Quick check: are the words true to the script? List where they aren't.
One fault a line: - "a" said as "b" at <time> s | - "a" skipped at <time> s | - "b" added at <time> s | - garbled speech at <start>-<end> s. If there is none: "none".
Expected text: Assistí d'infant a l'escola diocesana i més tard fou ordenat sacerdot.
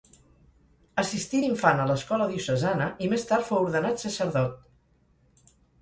none